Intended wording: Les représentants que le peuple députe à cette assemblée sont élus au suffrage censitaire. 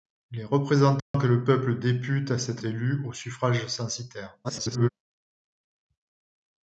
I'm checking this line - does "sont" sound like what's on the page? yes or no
no